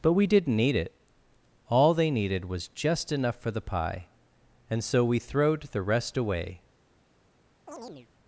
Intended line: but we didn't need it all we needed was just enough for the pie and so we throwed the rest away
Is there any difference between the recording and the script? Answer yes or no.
yes